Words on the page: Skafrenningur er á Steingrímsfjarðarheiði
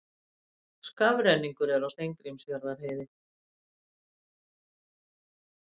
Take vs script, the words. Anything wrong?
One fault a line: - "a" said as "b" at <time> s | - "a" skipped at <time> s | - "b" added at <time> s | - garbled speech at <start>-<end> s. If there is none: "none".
none